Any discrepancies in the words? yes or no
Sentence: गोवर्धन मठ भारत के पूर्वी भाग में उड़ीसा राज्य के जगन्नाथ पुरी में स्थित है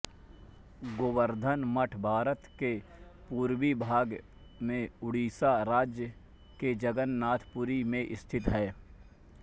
no